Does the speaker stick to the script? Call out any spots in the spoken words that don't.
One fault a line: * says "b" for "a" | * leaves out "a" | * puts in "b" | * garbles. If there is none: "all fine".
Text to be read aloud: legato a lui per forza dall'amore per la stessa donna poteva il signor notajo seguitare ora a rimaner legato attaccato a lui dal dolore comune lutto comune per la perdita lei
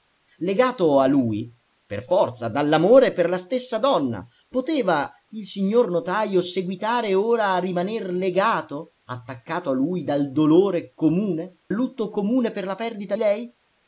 all fine